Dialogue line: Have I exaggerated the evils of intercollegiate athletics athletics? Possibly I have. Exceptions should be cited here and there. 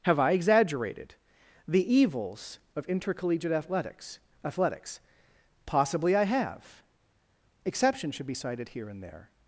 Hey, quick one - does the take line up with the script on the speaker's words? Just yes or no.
yes